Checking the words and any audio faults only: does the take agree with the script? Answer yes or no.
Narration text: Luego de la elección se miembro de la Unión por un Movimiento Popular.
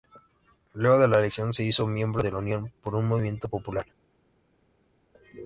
no